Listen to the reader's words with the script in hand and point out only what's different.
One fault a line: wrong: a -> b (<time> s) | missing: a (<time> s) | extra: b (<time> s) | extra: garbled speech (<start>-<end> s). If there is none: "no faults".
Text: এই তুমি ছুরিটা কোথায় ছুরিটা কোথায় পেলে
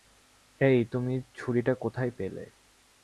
missing: ছুরিটা কোথায় (2.1 s)